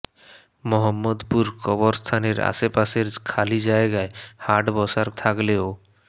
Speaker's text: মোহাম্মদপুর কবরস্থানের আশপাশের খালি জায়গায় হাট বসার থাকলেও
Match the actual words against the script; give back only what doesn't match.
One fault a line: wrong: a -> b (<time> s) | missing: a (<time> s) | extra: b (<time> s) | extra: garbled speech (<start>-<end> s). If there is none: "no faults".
no faults